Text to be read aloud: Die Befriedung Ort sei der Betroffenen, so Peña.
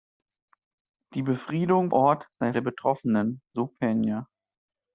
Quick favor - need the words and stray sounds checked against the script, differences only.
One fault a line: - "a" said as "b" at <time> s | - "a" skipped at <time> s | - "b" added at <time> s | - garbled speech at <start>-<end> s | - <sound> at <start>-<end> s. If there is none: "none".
none